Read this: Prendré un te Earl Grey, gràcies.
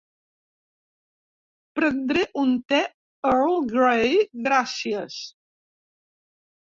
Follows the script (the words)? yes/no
yes